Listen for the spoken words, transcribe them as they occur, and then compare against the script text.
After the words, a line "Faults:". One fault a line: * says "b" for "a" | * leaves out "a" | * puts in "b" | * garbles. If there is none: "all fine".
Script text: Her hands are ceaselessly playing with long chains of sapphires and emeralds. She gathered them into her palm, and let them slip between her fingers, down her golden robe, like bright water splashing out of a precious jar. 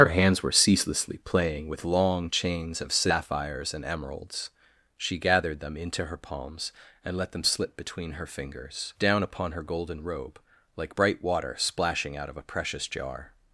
Her hands were ceaselessly playing with long chains of sapphires and emeralds. She gathered them into her palms, and let them slip between her fingers, down upon her golden robe, like bright water splashing out of a precious jar.
Faults:
* says "were" for "are"
* says "palms" for "palm"
* puts in "upon"